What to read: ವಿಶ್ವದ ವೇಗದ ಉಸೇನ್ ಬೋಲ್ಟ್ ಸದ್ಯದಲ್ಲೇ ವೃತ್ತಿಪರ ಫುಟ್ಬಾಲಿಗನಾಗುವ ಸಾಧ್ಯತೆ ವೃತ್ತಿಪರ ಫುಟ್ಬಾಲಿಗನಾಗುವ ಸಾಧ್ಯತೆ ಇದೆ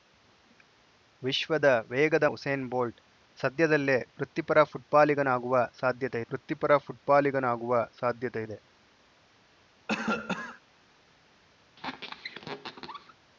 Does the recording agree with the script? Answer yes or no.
yes